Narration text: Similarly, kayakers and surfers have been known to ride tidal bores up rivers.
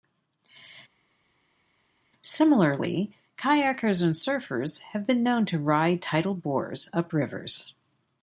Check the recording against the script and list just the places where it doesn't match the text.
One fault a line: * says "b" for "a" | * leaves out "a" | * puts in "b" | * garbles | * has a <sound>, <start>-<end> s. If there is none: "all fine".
all fine